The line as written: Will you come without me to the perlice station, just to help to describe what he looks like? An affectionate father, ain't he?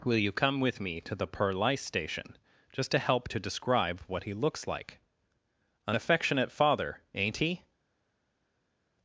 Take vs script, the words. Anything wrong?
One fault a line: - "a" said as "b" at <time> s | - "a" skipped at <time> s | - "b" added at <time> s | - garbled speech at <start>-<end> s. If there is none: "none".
- "without" said as "with" at 0.6 s